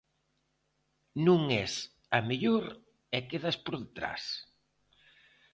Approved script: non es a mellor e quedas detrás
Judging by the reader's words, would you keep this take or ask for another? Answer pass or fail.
fail